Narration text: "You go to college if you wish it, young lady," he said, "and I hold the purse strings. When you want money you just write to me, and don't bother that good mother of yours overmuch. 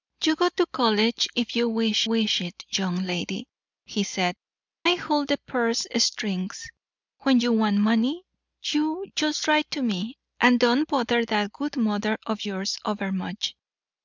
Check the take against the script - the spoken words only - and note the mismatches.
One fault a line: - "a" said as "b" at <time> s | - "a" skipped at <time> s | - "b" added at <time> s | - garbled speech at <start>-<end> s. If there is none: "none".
- "wish" added at 2.0 s
- "and" skipped at 4.4 s